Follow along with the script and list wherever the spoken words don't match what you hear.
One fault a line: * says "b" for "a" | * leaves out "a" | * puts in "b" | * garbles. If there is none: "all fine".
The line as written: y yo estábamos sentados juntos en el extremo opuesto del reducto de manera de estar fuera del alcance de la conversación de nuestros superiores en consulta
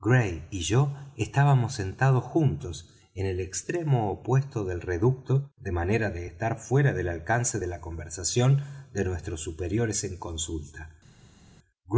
all fine